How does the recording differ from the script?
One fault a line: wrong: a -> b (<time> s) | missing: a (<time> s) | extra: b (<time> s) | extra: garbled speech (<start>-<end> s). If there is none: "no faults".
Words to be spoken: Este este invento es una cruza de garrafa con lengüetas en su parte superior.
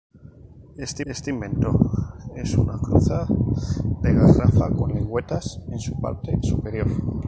no faults